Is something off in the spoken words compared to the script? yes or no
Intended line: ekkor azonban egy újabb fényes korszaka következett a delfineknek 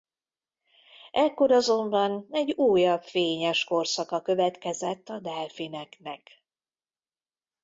no